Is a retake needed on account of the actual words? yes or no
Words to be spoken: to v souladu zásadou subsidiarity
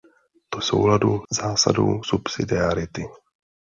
no